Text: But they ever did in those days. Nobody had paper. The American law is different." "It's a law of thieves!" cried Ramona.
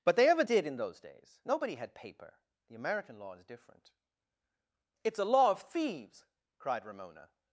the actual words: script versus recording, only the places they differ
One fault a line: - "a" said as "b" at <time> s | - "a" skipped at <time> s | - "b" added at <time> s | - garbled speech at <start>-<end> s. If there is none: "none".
none